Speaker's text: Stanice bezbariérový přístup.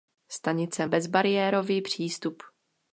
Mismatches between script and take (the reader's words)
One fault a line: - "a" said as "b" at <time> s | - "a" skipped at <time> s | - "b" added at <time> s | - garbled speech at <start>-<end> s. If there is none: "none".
none